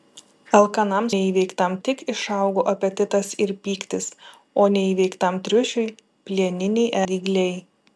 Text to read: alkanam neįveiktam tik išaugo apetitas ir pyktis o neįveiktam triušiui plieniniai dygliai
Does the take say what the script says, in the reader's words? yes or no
yes